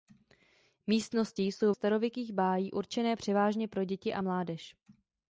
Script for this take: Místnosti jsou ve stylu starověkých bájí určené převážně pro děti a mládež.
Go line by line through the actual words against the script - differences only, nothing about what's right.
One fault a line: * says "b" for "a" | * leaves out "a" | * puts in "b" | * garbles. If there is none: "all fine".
* leaves out "ve stylu"